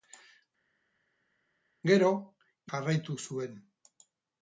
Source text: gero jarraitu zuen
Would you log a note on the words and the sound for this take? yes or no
no